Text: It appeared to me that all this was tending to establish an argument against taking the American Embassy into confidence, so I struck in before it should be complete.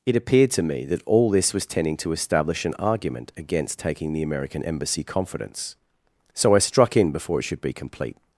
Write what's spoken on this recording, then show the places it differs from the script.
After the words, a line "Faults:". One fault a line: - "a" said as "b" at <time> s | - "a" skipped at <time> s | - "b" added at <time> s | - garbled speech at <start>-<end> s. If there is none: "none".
It appeared to me that all this was tending to establish an argument against taking the American Embassy confidence, so I struck in before it should be complete.
Faults:
- "into" skipped at 5.0 s